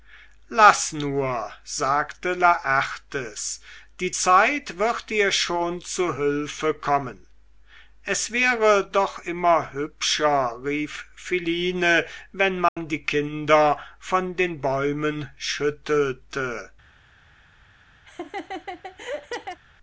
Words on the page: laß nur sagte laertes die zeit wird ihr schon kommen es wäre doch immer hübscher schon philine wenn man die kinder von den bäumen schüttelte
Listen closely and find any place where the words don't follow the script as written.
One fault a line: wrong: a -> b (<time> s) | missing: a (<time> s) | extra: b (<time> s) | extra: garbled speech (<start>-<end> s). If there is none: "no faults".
extra: zu hülfe (5.8 s)
wrong: schon -> rief (10.7 s)